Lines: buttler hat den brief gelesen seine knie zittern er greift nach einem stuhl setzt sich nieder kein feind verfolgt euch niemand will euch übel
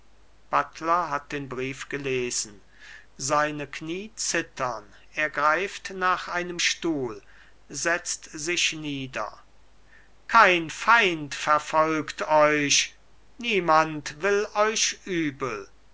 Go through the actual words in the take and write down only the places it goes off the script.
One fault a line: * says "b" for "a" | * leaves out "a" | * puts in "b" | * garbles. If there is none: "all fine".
all fine